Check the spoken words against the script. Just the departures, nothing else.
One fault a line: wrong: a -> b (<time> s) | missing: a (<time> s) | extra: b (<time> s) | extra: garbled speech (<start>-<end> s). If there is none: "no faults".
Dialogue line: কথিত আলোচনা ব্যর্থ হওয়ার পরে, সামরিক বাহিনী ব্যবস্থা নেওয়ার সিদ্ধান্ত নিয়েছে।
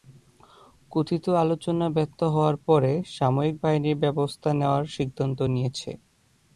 no faults